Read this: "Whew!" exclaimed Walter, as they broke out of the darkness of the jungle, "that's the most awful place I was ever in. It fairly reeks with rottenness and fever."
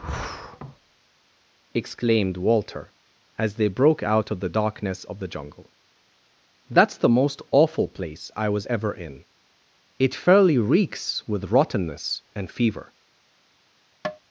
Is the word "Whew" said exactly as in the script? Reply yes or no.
no